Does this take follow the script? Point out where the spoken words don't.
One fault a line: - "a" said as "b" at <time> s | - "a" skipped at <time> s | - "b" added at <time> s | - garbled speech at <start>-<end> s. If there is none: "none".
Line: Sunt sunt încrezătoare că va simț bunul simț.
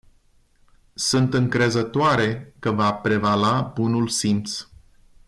- "sunt" skipped at 1.3 s
- "simț" said as "prevala" at 2.9 s